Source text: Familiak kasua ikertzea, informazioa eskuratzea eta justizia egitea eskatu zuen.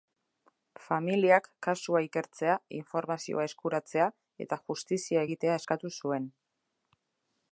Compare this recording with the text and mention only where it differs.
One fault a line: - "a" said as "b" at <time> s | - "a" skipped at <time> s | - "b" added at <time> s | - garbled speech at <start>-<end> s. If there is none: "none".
none